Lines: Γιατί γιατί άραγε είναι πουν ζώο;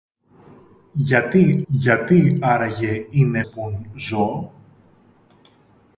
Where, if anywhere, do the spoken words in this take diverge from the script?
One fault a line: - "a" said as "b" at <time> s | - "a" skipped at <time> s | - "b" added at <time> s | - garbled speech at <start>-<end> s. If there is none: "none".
none